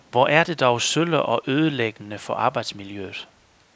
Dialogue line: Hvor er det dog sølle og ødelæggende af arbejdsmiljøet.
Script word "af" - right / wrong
wrong